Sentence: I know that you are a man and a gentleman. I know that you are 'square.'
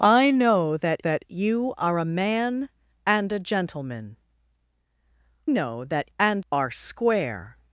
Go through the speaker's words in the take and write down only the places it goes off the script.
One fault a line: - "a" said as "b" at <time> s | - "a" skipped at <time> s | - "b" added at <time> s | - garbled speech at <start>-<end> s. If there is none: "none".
- "that" added at 1.0 s
- "I" skipped at 4.1 s
- "you" said as "and" at 6.2 s